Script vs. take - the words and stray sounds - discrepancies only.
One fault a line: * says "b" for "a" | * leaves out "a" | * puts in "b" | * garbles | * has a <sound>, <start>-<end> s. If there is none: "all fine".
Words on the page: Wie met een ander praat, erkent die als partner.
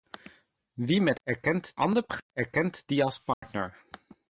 * says "erkent" for "een"
* has a dropout, 3.3-3.4 s